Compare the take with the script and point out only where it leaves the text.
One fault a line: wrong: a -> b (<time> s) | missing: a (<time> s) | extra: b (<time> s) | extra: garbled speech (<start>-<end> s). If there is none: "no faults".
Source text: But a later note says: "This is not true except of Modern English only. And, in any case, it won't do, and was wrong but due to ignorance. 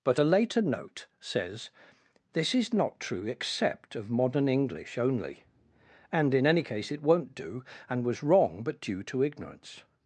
no faults